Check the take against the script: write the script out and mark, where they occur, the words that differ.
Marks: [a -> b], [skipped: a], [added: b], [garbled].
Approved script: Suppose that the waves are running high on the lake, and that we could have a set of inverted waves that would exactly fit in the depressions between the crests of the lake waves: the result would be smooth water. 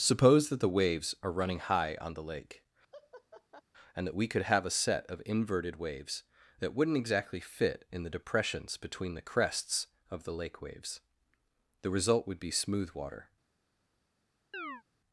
Suppose that the waves are running high on the lake, and that we could have a set of inverted waves that [would -> wouldn't] exactly fit in the depressions between the crests of the lake waves: the result would be smooth water.